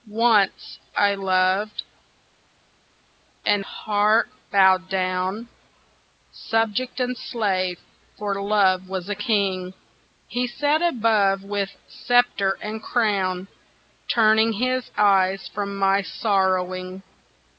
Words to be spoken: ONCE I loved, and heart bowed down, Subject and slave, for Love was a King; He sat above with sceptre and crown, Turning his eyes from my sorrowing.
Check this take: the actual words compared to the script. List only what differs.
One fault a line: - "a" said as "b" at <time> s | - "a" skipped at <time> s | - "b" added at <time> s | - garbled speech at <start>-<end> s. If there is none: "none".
none